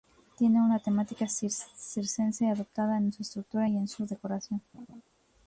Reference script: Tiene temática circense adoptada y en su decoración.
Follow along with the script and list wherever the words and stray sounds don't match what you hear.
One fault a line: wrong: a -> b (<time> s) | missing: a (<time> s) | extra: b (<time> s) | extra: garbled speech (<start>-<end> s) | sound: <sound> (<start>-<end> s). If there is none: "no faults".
extra: una (0.6 s)
extra: en su estructura (3.0 s)
sound: laugh (4.7-5.0 s)